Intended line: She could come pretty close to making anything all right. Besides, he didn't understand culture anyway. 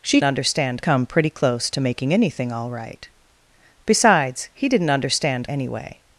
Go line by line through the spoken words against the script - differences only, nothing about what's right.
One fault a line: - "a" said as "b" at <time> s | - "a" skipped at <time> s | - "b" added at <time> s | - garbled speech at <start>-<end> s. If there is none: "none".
- "could" said as "understand" at 0.2 s
- "culture" skipped at 5.5 s